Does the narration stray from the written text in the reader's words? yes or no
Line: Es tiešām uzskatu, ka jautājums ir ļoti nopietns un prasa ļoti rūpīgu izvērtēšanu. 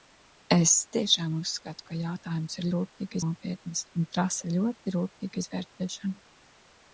yes